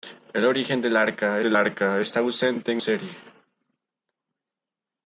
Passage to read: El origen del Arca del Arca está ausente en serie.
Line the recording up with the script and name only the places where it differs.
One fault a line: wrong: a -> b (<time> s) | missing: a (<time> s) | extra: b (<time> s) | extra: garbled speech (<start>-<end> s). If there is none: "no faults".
no faults